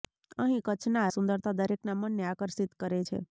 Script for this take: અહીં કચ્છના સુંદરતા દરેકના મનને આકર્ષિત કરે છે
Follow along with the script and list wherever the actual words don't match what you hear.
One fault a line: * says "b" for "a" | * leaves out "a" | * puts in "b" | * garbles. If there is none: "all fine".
all fine